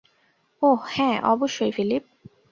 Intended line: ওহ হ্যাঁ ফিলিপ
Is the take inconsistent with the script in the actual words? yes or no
yes